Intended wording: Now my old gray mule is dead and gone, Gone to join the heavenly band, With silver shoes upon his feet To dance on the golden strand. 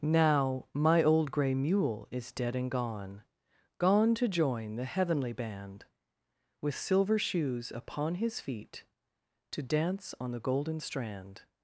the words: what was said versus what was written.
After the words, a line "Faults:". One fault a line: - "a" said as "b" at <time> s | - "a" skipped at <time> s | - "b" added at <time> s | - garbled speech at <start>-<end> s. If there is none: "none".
Now my old gray mule is dead and gone, Gone to join the heavenly band, With silver shoes upon his feet To dance on the golden strand.
Faults:
none